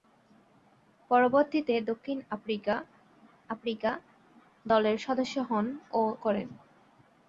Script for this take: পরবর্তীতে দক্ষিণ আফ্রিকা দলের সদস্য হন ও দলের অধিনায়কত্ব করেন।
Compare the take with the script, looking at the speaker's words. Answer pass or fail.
fail